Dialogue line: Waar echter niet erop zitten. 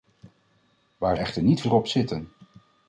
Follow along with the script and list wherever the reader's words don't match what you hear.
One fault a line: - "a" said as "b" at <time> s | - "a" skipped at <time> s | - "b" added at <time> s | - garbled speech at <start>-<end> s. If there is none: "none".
none